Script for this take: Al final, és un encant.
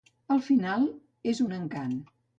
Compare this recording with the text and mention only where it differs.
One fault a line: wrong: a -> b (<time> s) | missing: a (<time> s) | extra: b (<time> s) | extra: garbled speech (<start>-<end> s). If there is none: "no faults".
no faults